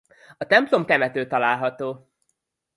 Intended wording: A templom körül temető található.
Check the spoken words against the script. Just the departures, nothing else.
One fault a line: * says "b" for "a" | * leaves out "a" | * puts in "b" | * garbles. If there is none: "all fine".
* leaves out "körül"